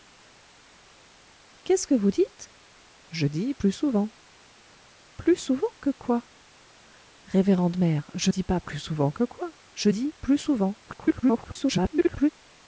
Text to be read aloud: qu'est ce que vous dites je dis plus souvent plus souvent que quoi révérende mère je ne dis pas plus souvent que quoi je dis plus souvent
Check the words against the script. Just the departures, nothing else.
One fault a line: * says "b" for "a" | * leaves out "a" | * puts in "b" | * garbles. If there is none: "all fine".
* leaves out "ne"
* garbles